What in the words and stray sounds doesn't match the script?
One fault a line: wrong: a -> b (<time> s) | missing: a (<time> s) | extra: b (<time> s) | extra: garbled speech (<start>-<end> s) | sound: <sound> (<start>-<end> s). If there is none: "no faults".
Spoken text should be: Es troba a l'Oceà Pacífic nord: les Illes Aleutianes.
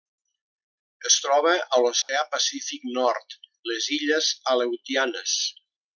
sound: dropout (2.0-2.1 s)